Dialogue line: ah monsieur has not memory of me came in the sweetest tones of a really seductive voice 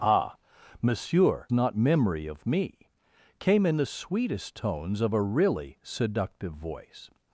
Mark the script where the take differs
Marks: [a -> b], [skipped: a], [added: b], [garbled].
ah monsieur [skipped: has] not memory of me came in the sweetest tones of a really seductive voice